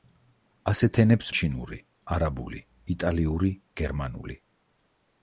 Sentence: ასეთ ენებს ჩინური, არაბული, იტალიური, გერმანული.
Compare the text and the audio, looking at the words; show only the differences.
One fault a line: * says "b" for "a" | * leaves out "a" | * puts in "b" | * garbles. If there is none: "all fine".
all fine